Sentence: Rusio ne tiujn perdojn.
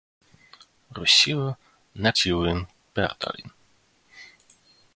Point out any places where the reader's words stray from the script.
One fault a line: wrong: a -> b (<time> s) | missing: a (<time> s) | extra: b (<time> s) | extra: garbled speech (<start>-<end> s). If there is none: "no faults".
no faults